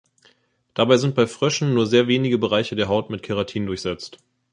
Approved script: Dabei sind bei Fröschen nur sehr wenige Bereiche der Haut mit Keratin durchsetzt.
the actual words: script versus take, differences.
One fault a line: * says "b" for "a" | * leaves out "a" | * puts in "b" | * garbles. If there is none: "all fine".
all fine